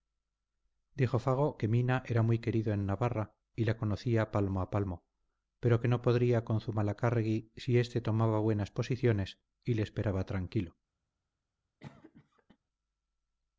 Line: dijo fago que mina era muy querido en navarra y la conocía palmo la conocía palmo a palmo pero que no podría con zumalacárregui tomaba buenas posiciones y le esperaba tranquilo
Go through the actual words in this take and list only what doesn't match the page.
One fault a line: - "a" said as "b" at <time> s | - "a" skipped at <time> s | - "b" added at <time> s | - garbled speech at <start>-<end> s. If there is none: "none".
- "la conocía palmo" skipped at 4.6 s
- "si éste" added at 7.5 s